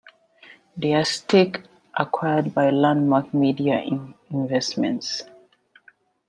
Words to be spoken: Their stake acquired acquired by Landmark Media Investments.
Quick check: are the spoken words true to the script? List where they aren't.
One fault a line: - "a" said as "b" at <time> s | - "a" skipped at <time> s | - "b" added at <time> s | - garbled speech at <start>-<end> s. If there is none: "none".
- "acquired" skipped at 2.5 s